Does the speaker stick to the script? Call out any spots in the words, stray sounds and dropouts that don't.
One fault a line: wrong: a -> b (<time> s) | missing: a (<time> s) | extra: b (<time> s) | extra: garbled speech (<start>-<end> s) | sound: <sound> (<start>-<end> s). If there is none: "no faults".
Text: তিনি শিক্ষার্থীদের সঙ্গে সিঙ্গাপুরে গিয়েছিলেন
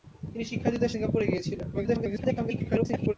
missing: সঙ্গে (0.9 s)
extra: garbled speech (1.7-3.1 s)